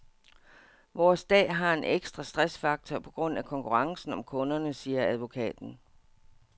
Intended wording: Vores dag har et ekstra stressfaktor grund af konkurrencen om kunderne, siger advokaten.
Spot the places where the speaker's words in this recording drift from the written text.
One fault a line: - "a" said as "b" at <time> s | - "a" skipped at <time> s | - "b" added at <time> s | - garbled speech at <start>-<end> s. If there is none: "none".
- "et" said as "en" at 1.7 s
- "på" added at 3.0 s